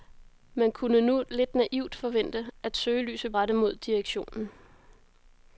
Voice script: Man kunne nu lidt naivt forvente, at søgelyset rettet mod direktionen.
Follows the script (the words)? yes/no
yes